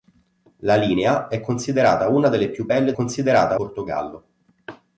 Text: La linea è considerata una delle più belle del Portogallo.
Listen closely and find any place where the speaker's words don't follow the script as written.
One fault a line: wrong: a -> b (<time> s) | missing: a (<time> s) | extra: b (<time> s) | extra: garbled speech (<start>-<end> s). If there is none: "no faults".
wrong: del -> considerata (2.9 s)